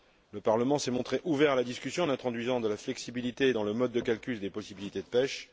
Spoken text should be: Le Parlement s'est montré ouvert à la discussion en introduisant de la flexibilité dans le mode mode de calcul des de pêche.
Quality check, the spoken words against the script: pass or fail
fail